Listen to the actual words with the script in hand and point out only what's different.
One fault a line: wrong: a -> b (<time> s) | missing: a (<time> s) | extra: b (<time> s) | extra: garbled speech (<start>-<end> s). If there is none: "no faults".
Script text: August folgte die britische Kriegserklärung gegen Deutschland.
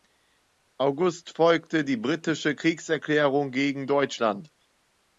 no faults